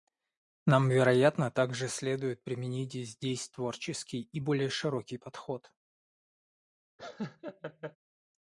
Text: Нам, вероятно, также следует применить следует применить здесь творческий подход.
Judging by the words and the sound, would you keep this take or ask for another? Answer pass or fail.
fail